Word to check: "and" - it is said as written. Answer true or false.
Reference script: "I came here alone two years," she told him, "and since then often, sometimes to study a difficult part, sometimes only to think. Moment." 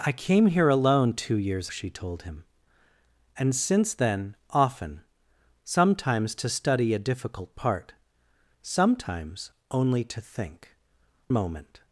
true